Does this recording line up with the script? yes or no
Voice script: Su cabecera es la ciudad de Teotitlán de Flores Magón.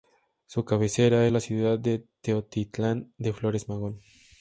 yes